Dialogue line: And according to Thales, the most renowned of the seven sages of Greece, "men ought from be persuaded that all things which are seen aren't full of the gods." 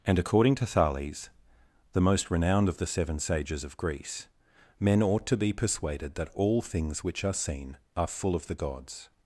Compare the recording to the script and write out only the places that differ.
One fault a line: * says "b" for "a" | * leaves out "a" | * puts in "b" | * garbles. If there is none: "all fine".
* says "to" for "from"
* says "are" for "aren't"